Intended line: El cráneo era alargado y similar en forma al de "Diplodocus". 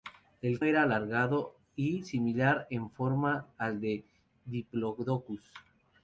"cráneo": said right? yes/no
no